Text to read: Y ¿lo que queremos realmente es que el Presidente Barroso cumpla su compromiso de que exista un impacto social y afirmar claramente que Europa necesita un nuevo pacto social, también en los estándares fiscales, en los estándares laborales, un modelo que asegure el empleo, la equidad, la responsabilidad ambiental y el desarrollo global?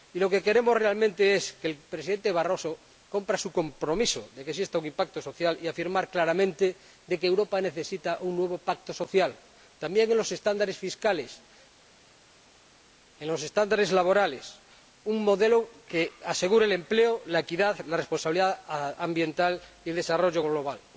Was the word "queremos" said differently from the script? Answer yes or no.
no